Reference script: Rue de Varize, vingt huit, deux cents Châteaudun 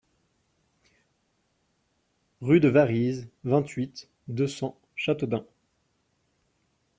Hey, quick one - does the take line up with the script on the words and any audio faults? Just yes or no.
yes